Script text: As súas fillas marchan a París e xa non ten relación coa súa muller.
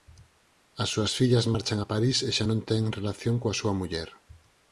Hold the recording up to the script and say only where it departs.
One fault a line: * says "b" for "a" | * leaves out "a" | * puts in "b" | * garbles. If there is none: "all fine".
all fine